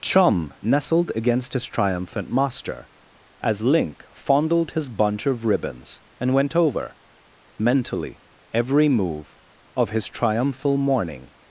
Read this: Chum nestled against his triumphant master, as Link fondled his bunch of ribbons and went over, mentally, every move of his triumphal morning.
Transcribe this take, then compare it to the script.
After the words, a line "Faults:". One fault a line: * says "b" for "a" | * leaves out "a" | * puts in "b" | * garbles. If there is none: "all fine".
Chum nestled against his triumphant master, as Link fondled his bunch of ribbons and went over, mentally, every move of his triumphal morning.
Faults:
all fine